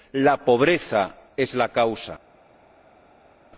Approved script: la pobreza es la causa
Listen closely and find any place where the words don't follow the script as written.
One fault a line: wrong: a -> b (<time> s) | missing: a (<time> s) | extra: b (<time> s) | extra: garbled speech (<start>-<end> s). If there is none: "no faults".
no faults